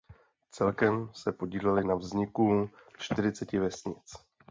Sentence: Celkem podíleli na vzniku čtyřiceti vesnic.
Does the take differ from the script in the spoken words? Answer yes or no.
yes